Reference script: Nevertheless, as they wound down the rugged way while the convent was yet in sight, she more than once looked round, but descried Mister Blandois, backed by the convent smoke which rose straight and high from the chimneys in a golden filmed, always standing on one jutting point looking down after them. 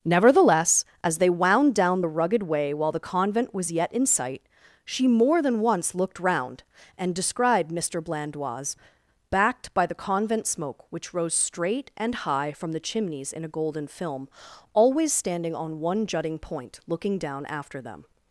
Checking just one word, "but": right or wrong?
wrong